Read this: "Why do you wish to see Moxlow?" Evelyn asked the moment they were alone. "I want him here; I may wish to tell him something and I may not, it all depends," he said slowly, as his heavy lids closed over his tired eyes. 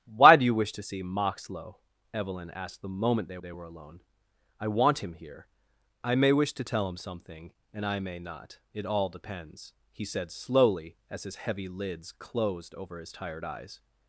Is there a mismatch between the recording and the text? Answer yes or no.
yes